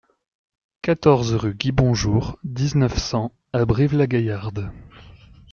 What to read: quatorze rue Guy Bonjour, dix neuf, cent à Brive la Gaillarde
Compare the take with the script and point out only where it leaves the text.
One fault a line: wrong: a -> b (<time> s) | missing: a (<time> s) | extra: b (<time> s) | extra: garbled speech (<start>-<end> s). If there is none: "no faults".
no faults